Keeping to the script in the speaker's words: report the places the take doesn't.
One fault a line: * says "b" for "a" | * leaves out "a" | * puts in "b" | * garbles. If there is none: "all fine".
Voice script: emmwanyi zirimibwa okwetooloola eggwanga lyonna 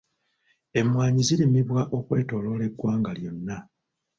all fine